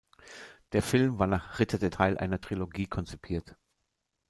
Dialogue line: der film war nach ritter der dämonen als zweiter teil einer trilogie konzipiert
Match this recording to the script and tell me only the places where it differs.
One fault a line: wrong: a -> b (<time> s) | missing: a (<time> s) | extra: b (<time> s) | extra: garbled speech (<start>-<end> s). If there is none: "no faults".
missing: dämonen als zweiter (1.9 s)